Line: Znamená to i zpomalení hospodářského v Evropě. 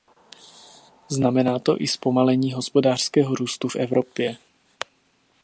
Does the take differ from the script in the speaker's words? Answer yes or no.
yes